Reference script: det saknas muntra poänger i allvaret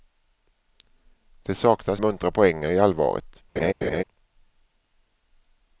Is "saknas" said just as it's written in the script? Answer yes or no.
yes